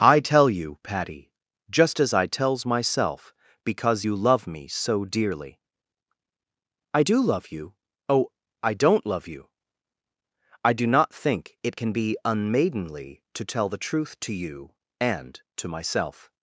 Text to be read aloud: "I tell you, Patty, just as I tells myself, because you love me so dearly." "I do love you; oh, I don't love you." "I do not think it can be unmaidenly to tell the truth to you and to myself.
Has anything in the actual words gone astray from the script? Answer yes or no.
no